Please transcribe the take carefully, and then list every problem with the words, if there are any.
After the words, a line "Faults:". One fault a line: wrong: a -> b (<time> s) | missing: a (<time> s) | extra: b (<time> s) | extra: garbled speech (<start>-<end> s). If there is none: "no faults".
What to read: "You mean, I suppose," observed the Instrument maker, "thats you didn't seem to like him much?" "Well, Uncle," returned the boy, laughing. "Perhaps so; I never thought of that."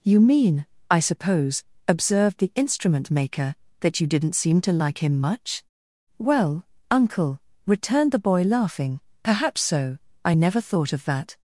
"You mean, I suppose," observed the Instrument maker, "that you didn't seem to like him much?" "Well, Uncle," returned the boy, laughing. "Perhaps so; I never thought of that."
Faults:
wrong: thats -> that (3.8 s)